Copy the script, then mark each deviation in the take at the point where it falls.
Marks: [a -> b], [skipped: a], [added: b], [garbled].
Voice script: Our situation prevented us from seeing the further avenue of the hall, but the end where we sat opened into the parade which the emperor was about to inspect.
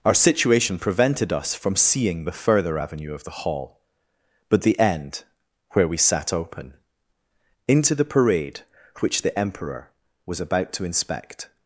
Our situation prevented us from seeing the further avenue of the hall, but the end where we sat [opened -> open] into the parade which the emperor was about to inspect.